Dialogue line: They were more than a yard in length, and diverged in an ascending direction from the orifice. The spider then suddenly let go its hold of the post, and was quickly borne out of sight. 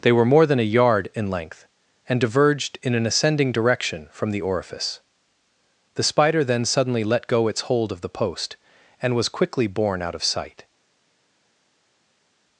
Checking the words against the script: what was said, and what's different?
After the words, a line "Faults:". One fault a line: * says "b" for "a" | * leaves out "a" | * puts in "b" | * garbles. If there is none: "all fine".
They were more than a yard in length, and diverged in an ascending direction from the orifice. The spider then suddenly let go its hold of the post, and was quickly borne out of sight.
Faults:
all fine